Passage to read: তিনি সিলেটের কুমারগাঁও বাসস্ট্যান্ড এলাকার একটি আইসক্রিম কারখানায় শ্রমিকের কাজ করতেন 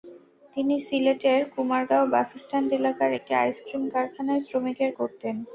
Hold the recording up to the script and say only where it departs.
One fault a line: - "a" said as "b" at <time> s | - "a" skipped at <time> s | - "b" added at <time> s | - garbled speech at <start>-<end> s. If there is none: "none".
- "কাজ" skipped at 4.9 s